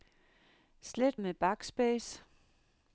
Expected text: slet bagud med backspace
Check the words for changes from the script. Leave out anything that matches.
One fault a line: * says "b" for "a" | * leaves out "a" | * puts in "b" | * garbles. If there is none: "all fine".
* leaves out "bagud"